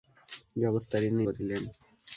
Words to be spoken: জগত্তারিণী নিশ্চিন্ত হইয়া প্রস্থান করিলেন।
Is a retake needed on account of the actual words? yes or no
yes